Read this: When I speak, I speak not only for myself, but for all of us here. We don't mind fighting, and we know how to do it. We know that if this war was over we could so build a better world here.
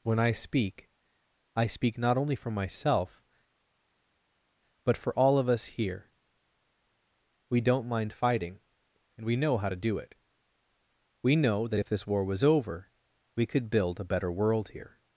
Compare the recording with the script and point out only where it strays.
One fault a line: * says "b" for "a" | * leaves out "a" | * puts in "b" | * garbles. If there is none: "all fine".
* leaves out "so"